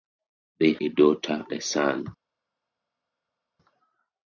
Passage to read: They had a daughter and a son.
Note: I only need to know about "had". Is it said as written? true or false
false